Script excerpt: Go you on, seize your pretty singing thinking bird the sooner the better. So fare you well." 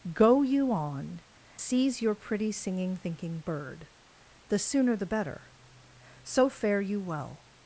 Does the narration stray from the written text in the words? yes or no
no